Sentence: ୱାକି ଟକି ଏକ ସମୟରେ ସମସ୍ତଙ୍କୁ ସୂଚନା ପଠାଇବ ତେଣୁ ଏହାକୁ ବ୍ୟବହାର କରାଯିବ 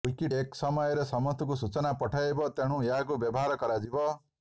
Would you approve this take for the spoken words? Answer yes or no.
no